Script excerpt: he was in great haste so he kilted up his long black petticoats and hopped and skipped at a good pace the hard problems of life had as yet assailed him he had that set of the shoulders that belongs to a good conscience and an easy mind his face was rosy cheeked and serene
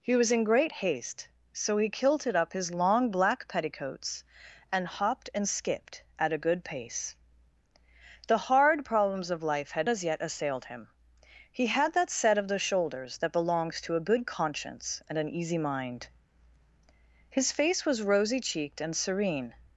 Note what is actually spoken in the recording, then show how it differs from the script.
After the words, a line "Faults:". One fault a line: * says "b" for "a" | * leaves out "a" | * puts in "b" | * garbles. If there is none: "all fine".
he was in great haste so he kilted up his long black petticoats and hopped and skipped at a good pace the hard problems of life had as yet assailed him he had that set of the shoulders that belongs to a good conscience and an easy mind his face was rosy cheeked and serene
Faults:
all fine